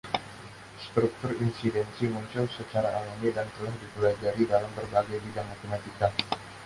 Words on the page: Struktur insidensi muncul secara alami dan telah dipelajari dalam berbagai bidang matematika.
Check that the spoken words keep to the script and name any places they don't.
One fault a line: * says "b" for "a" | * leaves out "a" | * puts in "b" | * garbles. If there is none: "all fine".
all fine